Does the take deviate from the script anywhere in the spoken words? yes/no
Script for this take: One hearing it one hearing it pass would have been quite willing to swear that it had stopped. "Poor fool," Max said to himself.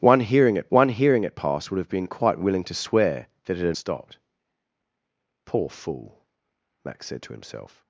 no